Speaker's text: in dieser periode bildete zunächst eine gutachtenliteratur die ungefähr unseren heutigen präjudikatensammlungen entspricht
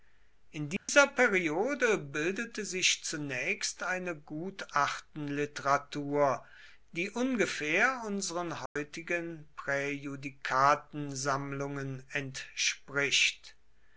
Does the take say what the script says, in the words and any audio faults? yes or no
no